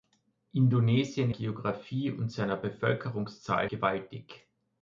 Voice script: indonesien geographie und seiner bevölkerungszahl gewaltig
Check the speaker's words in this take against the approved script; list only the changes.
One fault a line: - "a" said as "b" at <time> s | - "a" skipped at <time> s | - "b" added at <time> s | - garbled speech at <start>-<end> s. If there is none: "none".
none